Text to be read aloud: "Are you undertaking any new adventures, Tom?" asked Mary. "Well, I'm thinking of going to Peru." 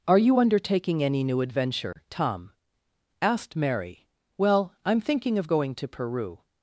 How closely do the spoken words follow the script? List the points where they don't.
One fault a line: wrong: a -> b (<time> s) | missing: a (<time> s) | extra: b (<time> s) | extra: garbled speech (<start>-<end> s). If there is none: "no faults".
wrong: adventures -> adventure (1.4 s)